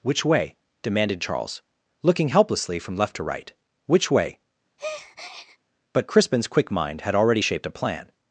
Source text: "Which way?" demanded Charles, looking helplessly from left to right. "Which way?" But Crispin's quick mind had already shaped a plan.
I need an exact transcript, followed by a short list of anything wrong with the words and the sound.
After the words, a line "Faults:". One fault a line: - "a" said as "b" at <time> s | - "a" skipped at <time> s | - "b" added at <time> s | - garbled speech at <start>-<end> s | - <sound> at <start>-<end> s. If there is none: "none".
"Which way?" demanded Charles, looking helplessly from left to right. "Which way?" But Crispin's quick mind had already shaped a plan.
Faults:
- breath at 4.8-5.6 s